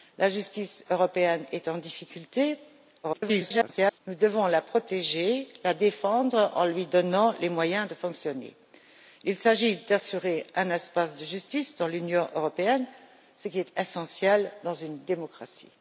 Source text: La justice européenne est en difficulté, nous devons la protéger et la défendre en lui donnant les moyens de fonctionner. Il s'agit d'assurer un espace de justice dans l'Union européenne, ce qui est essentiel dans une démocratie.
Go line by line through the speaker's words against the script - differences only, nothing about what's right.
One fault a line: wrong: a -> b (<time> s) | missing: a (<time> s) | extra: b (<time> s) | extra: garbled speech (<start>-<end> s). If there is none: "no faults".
extra: garbled speech (3.0-4.0 s)